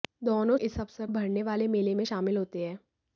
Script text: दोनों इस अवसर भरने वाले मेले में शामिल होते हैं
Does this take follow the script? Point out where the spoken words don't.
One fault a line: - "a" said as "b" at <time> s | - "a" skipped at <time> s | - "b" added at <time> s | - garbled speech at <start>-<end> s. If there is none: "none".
none